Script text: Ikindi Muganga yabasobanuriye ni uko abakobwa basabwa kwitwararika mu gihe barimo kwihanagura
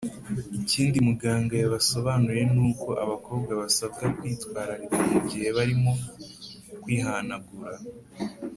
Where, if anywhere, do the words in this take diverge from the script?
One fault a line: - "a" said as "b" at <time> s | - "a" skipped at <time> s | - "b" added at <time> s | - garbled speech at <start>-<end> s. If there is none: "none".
none